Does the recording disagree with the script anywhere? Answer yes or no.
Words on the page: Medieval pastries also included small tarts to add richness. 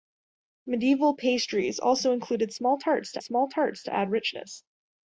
yes